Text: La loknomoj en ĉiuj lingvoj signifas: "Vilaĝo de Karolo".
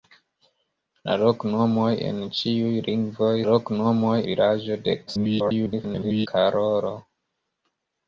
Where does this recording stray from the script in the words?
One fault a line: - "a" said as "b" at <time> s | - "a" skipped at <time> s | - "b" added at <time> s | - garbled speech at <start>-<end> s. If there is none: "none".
- "signifas" said as "loknomoj" at 3.5 s
- garbled speech at 5.1-6.3 s